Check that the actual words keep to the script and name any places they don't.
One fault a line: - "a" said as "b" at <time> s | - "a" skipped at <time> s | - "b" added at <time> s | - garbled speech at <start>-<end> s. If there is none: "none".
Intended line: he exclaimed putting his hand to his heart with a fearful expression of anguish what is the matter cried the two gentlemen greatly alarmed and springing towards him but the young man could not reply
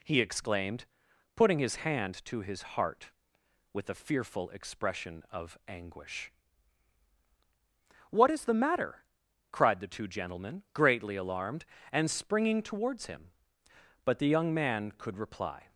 - "not" skipped at 15.2 s